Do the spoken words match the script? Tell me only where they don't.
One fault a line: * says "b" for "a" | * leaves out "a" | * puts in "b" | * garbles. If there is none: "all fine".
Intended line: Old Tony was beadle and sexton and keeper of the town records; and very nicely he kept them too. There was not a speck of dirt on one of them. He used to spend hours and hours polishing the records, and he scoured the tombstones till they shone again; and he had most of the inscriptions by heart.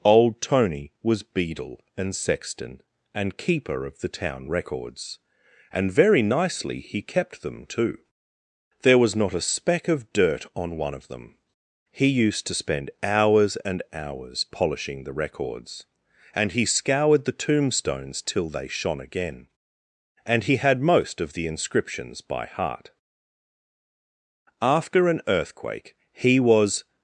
* puts in "After an earthquake he was"